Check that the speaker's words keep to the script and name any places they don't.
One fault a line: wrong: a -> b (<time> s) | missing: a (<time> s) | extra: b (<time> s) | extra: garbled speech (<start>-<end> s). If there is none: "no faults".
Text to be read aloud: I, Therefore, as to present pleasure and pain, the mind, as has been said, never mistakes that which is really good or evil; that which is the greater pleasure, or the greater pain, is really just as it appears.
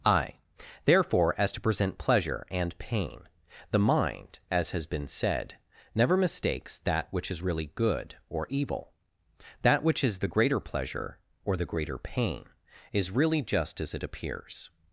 no faults